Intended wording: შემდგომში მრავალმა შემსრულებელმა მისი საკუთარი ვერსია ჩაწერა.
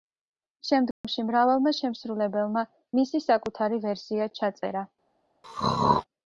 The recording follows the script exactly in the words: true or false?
true